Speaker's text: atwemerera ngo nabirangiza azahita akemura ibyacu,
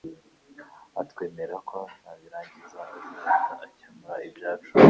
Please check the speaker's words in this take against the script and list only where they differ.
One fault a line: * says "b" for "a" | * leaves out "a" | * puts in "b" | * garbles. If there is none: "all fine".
* says "ko" for "ngo"